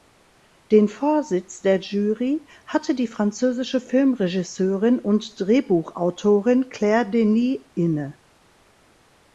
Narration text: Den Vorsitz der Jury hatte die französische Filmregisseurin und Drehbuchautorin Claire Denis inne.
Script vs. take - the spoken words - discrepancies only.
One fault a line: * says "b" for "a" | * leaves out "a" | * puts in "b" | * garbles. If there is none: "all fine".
all fine